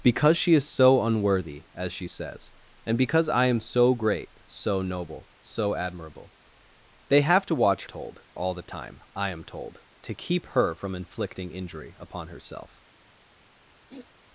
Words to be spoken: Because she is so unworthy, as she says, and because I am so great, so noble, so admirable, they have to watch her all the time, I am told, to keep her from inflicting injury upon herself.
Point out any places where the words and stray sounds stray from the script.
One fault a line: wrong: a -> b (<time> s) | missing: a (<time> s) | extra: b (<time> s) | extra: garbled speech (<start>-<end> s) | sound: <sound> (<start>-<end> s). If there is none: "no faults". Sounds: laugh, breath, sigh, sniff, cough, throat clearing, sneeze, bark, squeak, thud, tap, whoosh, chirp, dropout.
wrong: her -> told (7.9 s)
sound: throat clearing (13.9-14.1 s)